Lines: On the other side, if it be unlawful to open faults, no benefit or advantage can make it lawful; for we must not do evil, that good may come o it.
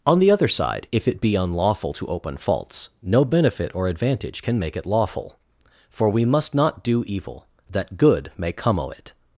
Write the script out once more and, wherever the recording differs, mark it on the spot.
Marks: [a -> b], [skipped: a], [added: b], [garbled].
On the other side, if it be unlawful to open faults, no benefit or advantage can make it lawful; for we must not do evil, that good may come o it.